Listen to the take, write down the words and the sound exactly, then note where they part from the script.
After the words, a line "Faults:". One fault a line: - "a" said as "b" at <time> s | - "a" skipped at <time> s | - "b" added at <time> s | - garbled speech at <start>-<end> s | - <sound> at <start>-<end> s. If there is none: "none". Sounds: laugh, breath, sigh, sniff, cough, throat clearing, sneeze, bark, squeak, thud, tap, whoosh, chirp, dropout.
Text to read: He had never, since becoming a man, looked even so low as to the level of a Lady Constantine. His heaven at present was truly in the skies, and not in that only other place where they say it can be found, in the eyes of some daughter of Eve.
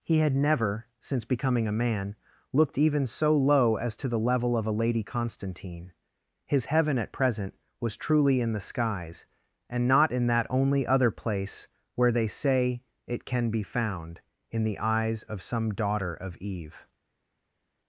He had never, since becoming a man, looked even so low as to the level of a Lady Constantine. His heaven at present was truly in the skies, and not in that only other place where they say it can be found, in the eyes of some daughter of Eve.
Faults:
none